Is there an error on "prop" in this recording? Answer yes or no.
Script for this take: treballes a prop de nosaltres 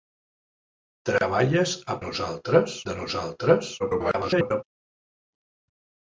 yes